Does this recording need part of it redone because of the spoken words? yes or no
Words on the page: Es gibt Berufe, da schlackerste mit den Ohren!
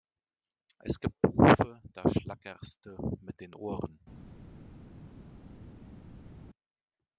no